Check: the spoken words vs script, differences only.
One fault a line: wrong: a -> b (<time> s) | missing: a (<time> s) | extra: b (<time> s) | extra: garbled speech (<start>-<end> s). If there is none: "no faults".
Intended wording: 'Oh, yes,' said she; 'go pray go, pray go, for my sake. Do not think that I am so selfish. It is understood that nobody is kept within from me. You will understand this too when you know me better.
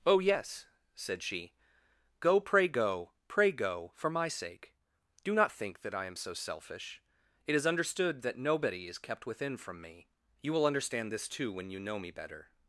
no faults